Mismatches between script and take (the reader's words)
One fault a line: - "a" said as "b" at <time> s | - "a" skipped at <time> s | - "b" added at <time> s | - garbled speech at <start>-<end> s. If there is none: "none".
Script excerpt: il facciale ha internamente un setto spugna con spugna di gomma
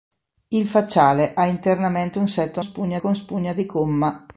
none